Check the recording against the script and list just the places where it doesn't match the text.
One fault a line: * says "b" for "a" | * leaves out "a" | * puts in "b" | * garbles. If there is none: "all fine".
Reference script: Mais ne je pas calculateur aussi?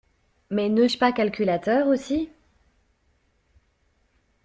all fine